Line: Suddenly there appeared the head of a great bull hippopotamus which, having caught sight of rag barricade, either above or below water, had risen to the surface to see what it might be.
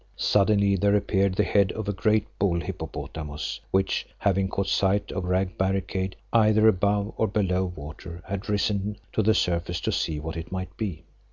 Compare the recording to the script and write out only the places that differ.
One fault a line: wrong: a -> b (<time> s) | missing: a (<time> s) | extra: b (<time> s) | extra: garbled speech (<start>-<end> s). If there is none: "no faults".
no faults